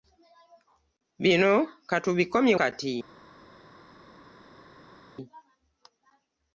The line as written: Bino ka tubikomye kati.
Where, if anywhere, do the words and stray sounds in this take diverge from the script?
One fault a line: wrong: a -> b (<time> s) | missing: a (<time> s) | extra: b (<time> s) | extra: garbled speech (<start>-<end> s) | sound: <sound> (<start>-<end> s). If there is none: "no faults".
no faults